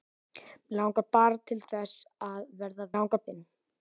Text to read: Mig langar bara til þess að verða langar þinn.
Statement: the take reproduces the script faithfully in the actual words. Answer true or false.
true